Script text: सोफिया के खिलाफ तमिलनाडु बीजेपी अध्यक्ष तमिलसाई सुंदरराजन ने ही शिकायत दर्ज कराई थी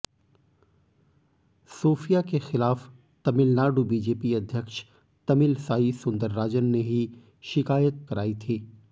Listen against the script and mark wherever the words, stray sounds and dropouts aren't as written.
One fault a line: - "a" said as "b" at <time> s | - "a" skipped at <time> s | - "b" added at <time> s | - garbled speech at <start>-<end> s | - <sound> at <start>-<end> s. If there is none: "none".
- "दर्ज" skipped at 8.1 s